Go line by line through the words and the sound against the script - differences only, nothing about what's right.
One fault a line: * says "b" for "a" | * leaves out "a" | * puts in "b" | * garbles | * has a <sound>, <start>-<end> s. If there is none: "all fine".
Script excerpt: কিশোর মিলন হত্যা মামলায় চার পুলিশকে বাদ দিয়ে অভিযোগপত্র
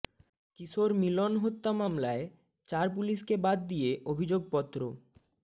all fine